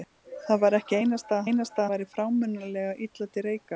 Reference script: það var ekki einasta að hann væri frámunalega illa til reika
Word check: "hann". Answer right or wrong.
wrong